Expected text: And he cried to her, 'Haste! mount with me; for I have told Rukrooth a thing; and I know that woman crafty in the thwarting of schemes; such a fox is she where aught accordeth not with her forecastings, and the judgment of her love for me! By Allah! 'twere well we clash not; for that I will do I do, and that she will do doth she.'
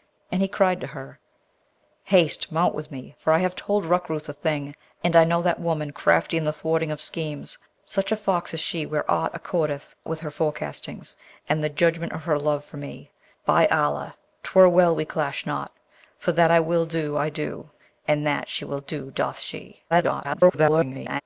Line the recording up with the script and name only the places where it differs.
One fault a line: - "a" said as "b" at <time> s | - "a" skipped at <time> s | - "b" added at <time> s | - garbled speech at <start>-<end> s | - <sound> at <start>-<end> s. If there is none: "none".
- "not" skipped at 9.9 s
- garbled speech at 19.9-21.2 s